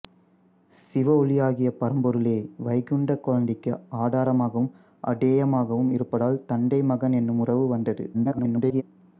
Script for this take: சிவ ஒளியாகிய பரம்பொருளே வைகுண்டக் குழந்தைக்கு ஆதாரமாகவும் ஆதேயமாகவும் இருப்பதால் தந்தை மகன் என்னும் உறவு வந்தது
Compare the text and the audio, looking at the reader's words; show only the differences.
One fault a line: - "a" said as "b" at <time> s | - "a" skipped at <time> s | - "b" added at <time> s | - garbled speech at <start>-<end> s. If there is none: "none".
- garbled speech at 8.1-8.8 s